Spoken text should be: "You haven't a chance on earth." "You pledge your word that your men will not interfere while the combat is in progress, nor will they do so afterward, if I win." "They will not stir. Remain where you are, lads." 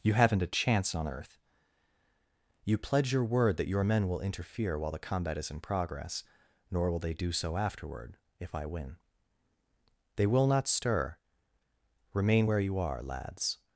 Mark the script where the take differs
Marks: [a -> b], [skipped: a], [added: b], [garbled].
"You haven't a chance on earth." "You pledge your word that your men will [skipped: not] interfere while the combat is in progress, nor will they do so afterward, if I win." "They will not stir. Remain where you are, lads."